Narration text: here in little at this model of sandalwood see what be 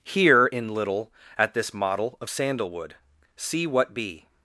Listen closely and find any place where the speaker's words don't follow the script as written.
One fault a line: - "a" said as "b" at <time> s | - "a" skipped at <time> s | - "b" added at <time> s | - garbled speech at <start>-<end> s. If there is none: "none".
none